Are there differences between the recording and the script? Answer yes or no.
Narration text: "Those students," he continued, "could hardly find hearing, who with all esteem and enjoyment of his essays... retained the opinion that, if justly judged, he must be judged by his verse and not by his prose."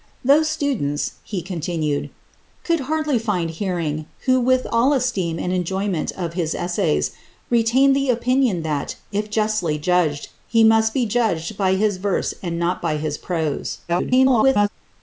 yes